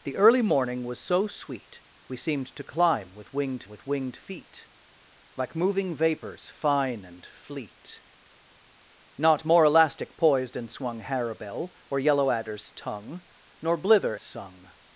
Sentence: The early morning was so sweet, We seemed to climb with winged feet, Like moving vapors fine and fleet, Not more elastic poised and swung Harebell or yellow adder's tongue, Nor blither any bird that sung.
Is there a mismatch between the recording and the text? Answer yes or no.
yes